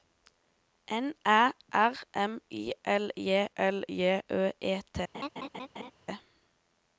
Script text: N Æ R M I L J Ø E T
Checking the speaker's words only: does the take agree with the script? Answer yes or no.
no